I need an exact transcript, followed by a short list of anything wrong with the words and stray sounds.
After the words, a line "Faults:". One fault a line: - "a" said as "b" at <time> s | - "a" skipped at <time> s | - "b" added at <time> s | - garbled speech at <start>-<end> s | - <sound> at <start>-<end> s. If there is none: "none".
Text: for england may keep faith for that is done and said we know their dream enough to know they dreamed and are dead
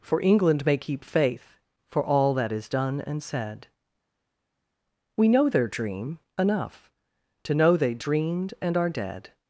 for england may keep faith for all that is done and said we know their dream enough to know they dreamed and are dead
Faults:
- "all" added at 2.0 s